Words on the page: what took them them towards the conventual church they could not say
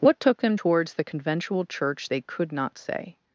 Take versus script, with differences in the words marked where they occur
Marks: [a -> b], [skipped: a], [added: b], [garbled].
what took them [skipped: them] towards the conventual church they could not say